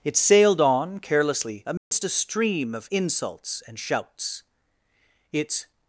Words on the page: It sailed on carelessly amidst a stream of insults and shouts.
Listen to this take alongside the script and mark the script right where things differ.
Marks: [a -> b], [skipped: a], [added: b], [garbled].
It sailed on carelessly amidst a stream of insults and shouts. [added: Its]